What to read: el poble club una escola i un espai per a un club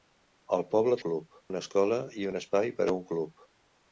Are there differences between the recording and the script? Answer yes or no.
no